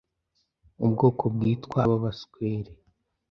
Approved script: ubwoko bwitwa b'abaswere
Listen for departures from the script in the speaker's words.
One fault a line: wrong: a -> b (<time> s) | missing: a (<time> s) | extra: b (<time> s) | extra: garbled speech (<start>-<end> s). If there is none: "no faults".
no faults